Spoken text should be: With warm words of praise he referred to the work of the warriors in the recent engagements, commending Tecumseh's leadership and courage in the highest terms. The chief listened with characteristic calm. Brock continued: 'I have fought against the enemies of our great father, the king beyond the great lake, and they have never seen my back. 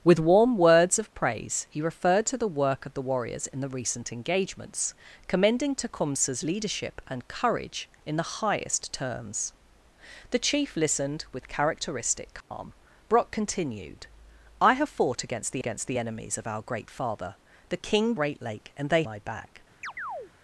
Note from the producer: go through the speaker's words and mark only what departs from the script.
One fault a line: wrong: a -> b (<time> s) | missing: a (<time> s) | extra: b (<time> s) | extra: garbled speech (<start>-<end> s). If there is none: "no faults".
extra: against the (15.6 s)
missing: beyond the (18.1 s)
missing: have never seen (19.0 s)